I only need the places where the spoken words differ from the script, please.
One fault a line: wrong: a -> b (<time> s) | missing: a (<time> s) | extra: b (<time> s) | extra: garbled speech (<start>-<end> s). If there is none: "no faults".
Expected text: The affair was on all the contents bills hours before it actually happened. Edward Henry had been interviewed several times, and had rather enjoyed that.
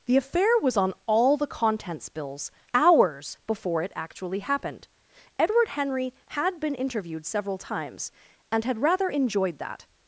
no faults